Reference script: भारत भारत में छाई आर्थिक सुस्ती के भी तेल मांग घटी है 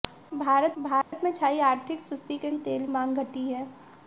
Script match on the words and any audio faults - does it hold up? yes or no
no